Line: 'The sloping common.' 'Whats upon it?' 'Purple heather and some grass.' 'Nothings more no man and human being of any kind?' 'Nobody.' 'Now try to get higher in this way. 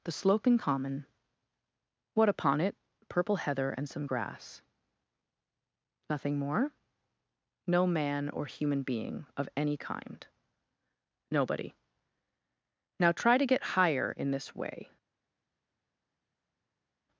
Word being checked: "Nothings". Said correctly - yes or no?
no